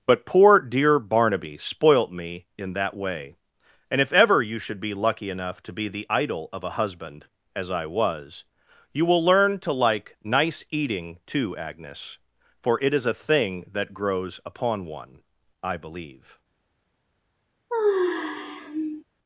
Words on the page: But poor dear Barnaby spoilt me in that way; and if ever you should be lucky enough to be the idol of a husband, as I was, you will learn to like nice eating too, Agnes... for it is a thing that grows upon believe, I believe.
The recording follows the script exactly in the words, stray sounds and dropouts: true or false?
false